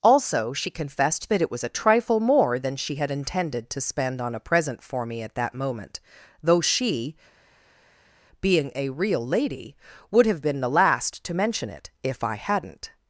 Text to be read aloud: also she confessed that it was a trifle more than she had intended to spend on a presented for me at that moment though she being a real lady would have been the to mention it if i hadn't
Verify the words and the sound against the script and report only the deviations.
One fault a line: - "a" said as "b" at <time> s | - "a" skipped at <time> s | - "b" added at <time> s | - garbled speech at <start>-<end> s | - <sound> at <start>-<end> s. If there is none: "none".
- "presented" said as "present" at 4.4 s
- "last" added at 10.7 s